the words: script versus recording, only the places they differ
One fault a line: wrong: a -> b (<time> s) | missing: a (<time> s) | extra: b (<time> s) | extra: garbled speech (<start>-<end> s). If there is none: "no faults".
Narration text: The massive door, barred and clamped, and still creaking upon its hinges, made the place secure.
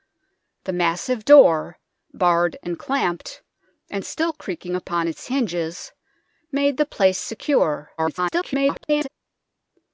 extra: garbled speech (8.0-9.1 s)